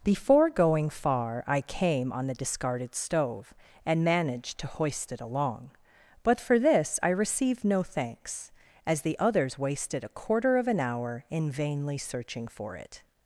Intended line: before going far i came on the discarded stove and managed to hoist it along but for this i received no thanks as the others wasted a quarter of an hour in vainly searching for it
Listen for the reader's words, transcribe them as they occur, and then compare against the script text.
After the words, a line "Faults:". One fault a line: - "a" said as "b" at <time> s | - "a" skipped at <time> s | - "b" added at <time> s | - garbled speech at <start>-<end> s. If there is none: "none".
before going far i came on the discarded stove and managed to hoist it along but for this i received no thanks as the others wasted a quarter of an hour in vainly searching for it
Faults:
none